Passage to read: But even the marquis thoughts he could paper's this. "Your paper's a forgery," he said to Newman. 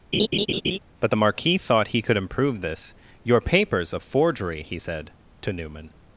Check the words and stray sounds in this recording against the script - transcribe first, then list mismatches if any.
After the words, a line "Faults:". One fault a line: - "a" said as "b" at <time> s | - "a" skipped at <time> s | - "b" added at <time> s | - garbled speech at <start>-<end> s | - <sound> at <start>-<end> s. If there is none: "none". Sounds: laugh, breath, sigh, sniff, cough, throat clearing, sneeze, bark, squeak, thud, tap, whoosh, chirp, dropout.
But the marquis thought he could improve this. "Your paper's a forgery," he said to Newman.
Faults:
- laugh at 0.1-0.8 s
- "even" skipped at 1.1 s
- "thoughts" said as "thought" at 1.6 s
- "paper's" said as "improve" at 2.2 s